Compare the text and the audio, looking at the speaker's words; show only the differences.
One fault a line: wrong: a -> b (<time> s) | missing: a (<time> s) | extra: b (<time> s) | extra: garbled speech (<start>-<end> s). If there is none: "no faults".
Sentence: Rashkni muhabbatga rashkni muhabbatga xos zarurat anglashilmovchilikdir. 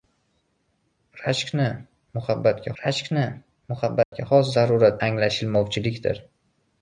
no faults